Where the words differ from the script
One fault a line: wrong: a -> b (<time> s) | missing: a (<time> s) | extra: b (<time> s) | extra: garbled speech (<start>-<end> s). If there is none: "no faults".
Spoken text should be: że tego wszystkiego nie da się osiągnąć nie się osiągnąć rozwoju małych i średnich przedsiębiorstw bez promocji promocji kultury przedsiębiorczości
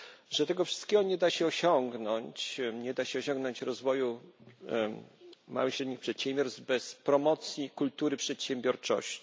extra: da (2.9 s)
missing: promocji (7.7 s)